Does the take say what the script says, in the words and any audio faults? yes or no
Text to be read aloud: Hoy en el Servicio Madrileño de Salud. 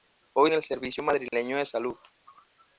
no